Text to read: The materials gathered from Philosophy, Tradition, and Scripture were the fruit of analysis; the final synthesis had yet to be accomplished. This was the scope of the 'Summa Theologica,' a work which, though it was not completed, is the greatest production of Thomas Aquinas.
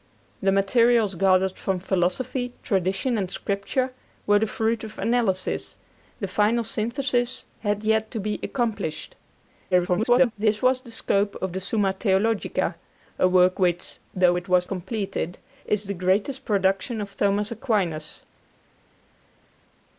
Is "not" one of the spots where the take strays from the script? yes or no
yes